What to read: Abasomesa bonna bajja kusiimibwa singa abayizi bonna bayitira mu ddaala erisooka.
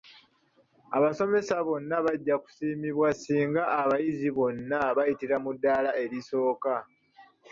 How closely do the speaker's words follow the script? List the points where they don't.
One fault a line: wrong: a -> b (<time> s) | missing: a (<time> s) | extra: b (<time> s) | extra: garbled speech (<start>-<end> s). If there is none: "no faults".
no faults